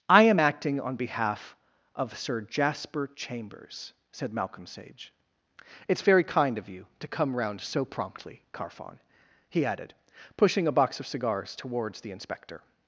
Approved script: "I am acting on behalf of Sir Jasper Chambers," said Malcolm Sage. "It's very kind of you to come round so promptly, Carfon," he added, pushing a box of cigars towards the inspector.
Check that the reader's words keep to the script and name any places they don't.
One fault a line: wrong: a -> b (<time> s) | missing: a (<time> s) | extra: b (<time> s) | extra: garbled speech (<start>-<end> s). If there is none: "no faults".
no faults